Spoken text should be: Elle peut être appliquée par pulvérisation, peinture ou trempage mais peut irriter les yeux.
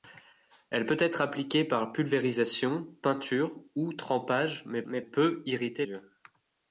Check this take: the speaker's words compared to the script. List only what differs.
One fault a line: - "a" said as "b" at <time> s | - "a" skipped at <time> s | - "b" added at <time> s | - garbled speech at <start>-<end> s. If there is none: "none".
- "mais" added at 4.9 s
- "les" skipped at 5.9 s